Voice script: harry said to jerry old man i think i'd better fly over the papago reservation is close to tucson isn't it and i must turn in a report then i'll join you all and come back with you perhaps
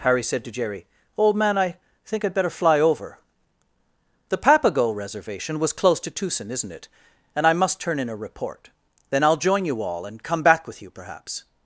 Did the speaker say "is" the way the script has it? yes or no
no